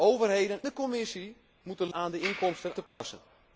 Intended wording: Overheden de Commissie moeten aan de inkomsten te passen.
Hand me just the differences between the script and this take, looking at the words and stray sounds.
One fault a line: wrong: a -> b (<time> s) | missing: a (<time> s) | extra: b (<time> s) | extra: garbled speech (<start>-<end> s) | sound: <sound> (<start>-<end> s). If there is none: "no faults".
sound: dropout (2.9-3.0 s)